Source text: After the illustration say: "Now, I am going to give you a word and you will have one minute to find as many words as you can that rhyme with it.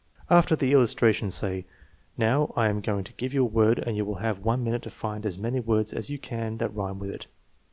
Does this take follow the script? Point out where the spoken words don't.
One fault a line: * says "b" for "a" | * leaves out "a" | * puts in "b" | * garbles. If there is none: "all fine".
all fine